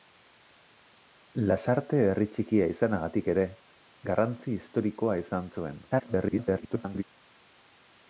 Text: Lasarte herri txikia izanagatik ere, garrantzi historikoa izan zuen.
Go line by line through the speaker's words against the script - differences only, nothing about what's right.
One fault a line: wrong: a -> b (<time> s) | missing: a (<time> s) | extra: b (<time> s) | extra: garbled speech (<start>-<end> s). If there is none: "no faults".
extra: garbled speech (5.9-7.0 s)